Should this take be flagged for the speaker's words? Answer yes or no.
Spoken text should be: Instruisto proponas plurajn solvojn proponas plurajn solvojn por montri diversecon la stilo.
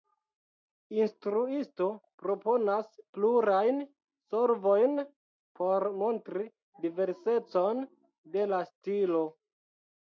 yes